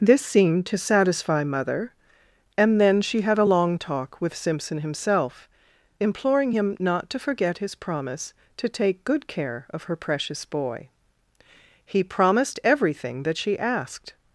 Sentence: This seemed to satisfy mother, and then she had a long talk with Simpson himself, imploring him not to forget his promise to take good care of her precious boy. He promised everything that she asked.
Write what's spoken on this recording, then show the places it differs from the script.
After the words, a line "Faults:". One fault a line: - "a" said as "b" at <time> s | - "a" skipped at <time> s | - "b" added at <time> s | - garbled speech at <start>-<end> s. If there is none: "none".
This seemed to satisfy mother, and then she had a long talk with Simpson himself, imploring him not to forget his promise to take good care of her precious boy. He promised everything that she asked.
Faults:
none